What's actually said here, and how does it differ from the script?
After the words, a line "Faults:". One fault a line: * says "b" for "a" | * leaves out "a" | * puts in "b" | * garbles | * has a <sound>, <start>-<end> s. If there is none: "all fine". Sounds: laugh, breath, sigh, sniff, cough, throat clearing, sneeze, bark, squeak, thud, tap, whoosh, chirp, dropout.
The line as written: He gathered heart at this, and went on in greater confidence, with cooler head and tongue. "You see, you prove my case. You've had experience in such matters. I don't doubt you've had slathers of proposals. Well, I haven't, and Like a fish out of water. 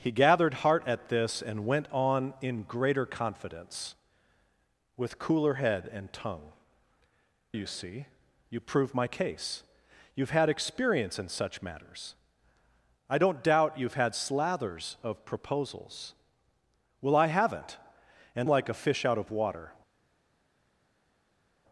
He gathered heart at this, and went on in greater confidence, with cooler head and tongue. "You see, you prove my case. You've had experience in such matters. I don't doubt you've had slathers of proposals. Well, I haven't, and Like a fish out of water.
Faults:
all fine